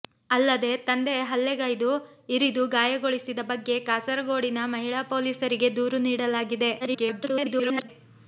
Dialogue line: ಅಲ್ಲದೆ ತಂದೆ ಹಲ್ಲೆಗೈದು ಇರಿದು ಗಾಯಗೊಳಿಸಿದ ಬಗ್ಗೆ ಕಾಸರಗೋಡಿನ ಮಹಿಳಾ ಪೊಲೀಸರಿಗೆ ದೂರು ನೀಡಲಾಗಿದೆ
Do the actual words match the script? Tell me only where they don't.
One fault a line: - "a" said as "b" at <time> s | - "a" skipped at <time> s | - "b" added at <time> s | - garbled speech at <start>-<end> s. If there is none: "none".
- garbled speech at 6.8-7.9 s